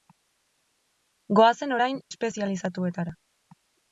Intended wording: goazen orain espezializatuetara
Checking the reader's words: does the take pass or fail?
pass